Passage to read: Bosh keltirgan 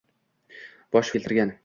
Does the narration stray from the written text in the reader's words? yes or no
no